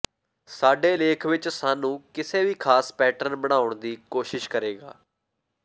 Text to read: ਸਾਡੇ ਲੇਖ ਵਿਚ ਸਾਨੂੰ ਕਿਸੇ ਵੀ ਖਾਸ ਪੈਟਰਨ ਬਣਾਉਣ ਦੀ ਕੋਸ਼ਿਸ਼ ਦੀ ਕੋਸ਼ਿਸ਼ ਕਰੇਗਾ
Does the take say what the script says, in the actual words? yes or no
no